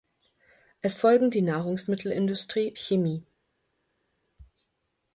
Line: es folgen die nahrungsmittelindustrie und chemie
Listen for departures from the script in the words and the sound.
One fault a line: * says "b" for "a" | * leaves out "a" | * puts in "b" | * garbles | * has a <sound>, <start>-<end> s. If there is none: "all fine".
* leaves out "und"